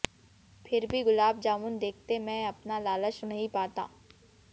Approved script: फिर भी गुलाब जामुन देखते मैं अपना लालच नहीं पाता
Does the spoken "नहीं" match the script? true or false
true